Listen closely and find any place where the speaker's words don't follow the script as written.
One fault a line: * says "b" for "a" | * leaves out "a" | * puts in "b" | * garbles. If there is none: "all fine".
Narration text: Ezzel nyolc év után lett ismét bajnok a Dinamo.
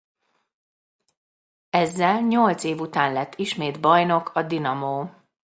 all fine